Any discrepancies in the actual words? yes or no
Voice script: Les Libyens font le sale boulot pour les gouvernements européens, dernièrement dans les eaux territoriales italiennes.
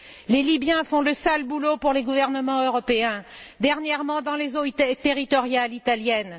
no